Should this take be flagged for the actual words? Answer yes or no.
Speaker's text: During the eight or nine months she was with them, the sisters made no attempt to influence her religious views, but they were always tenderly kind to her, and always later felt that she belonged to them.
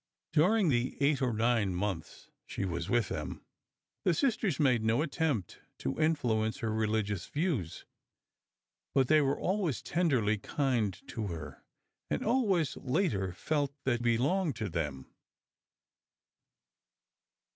yes